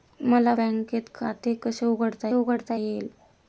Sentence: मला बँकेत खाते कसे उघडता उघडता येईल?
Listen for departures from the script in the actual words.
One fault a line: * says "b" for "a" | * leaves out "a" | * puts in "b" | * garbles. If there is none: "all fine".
all fine